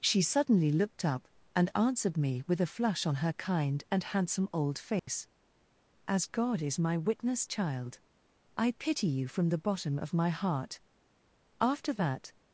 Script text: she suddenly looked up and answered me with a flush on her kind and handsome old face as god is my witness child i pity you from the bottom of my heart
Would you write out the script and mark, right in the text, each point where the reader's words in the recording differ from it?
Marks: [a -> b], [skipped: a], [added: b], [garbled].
she suddenly looked up and answered me with a flush on her kind and handsome old face as god is my witness child i pity you from the bottom of my heart [added: after that]